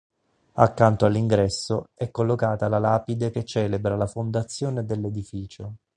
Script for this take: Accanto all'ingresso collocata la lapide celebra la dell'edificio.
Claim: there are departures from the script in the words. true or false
true